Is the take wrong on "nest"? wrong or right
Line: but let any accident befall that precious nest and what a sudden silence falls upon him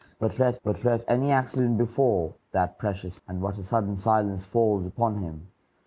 wrong